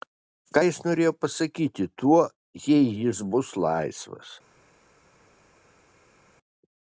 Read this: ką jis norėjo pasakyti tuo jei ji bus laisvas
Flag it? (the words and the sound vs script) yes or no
yes